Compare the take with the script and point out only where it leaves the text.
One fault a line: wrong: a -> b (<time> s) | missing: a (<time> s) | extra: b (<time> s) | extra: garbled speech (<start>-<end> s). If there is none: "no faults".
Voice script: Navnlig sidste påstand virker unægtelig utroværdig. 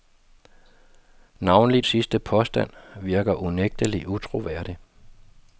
no faults